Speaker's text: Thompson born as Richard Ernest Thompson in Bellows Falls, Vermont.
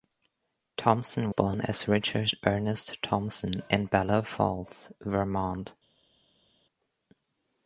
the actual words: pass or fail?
pass